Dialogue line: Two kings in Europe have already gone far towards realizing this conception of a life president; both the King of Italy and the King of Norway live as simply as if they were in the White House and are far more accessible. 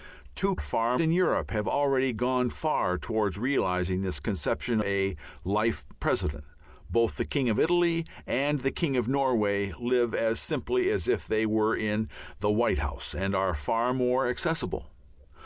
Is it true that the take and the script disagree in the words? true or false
true